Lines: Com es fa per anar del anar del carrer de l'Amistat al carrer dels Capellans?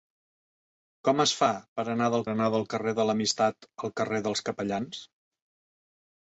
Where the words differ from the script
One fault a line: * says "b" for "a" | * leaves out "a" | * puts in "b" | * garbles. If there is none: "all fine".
all fine